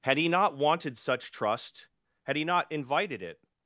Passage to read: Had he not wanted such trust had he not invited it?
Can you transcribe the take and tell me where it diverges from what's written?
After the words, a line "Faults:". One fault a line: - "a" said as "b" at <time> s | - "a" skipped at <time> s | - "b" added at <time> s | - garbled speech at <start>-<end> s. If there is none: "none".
Had he not wanted such trust had he not invited it?
Faults:
none